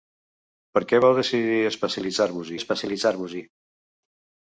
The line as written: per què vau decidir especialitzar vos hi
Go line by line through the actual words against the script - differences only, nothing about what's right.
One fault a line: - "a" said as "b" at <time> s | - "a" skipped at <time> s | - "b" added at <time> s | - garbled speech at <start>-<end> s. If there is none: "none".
- "especialitzar vos" added at 2.6 s